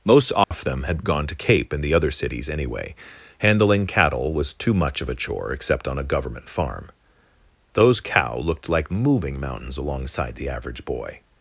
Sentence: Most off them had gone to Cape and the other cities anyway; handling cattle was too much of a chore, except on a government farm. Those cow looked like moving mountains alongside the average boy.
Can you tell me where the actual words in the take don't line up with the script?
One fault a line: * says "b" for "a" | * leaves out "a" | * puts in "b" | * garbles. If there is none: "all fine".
all fine